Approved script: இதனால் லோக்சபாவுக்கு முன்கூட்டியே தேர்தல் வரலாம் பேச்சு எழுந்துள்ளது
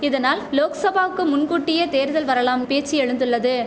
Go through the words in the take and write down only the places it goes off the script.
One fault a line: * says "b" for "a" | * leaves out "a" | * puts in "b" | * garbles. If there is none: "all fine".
all fine